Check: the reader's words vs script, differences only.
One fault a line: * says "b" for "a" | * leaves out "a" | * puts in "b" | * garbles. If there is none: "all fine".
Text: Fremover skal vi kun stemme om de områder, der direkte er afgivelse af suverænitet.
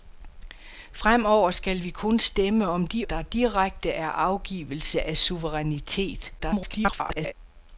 * leaves out "områder"
* garbles